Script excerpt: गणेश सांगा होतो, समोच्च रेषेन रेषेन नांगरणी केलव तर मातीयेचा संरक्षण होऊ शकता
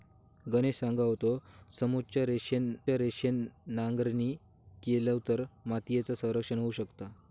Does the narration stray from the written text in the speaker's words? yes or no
no